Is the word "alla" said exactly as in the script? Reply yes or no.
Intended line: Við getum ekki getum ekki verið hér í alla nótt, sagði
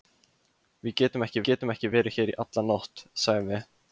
yes